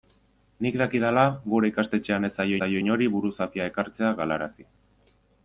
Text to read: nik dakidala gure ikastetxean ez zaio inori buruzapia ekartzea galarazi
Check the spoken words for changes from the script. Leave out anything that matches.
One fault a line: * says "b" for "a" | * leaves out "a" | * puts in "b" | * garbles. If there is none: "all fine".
* puts in "zaio"